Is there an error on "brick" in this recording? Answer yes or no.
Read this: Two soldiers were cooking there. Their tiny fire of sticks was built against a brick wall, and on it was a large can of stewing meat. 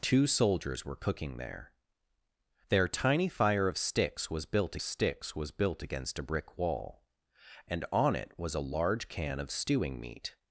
no